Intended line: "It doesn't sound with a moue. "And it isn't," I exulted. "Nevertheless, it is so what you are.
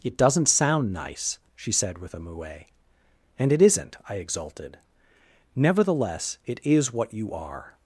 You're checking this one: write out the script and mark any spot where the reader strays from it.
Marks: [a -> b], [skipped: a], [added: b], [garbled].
"It doesn't sound [added: nice she said] with a moue. "And it isn't," I exulted. "Nevertheless, it is [skipped: so] what you are.